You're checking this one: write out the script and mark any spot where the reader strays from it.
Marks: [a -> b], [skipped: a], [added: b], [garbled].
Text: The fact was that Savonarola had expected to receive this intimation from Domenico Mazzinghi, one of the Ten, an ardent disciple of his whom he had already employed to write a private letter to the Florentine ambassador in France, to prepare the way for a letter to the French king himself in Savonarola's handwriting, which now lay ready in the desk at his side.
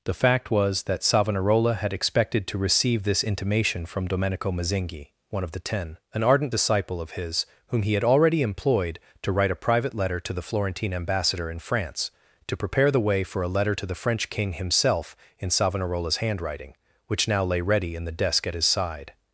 The fact was that Savonarola had expected to receive this intimation from Domenico Mazzinghi, one of the Ten, an ardent disciple of his whom he had already employed to write a private letter to the Florentine ambassador in France, to prepare the way for a letter to the French king himself in Savonarola's handwriting, which now lay ready in the desk at his side.